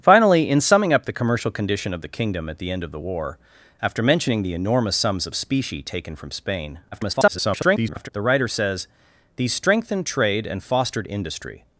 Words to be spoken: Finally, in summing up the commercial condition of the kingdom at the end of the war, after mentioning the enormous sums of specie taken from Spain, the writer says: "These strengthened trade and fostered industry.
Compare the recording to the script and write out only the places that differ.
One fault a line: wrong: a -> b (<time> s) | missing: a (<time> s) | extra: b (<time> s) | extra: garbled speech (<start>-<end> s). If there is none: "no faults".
extra: garbled speech (6.9-8.1 s)